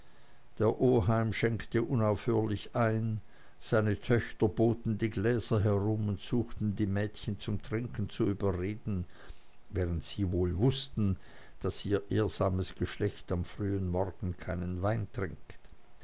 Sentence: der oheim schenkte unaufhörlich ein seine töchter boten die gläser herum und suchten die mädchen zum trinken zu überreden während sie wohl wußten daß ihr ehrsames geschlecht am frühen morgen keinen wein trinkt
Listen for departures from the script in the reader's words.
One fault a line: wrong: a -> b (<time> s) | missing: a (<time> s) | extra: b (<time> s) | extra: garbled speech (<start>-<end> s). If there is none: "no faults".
no faults